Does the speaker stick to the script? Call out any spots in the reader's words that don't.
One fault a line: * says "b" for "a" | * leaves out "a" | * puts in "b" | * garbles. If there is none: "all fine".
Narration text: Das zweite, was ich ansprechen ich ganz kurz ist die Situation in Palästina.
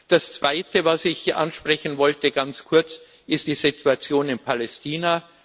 * says "wollte" for "ich"